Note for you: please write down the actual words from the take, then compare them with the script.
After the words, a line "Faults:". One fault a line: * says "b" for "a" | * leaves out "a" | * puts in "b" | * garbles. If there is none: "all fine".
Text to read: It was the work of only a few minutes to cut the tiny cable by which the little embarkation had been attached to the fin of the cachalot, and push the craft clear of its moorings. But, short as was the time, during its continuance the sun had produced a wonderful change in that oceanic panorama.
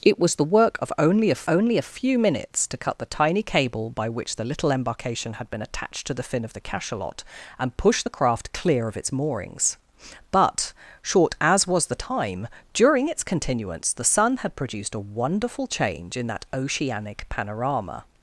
It was the work of only a only a few minutes to cut the tiny cable by which the little embarkation had been attached to the fin of the cachalot, and push the craft clear of its moorings. But, short as was the time, during its continuance the sun had produced a wonderful change in that oceanic panorama.
Faults:
* puts in "only a"